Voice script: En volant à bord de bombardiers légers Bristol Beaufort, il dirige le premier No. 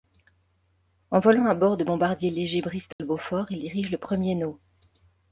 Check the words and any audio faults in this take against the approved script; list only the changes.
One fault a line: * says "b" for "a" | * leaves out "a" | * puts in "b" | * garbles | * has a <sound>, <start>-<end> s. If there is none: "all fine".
* has a dropout, 2.9-3.0 s